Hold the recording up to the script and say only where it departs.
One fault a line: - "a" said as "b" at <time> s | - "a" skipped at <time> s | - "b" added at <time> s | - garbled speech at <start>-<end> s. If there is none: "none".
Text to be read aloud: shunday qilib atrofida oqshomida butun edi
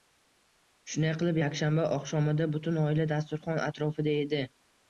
- "atrofida" said as "yakshanba" at 1.4 s
- "oila dasturxon atrofida" added at 2.8 s